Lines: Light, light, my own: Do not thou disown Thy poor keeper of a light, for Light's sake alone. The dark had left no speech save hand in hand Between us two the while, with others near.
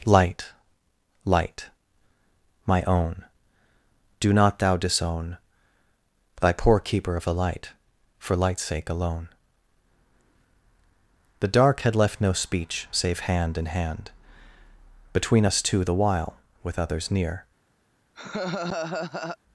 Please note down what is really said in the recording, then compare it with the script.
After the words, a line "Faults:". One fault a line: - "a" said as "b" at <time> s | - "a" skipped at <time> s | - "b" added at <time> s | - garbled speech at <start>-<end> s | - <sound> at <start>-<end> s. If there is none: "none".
Light, light, my own: Do not thou disown Thy poor keeper of a light, for Light's sake alone. The dark had left no speech save hand in hand Between us two the while, with others near.
Faults:
- laugh at 18.1-19.4 s